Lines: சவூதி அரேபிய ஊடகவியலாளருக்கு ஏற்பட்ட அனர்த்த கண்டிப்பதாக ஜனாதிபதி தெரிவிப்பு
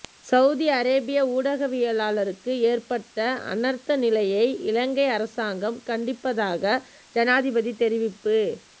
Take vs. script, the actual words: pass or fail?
fail